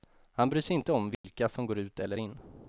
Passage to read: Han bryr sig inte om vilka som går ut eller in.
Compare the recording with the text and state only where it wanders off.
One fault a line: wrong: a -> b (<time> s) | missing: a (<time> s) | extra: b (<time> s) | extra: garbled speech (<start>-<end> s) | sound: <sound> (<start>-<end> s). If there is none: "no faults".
sound: dropout (1.1-1.2 s)